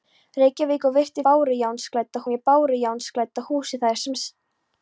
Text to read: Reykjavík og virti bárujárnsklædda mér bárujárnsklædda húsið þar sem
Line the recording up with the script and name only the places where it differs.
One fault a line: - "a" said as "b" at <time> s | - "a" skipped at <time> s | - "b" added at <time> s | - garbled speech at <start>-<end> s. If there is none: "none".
none